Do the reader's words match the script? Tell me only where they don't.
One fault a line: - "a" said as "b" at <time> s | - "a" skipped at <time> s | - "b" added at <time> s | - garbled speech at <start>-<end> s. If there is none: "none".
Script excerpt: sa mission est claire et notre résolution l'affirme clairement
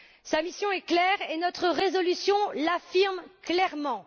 none